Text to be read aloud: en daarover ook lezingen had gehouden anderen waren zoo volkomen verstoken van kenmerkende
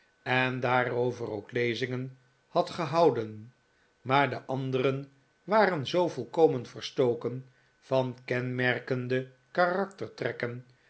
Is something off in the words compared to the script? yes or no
yes